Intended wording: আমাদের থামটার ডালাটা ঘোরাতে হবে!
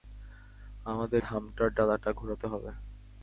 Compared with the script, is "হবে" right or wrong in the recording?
right